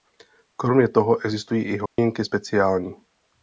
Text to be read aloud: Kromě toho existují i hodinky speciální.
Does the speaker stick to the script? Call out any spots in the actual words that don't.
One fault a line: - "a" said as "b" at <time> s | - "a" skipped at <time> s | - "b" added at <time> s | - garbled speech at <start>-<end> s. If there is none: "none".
none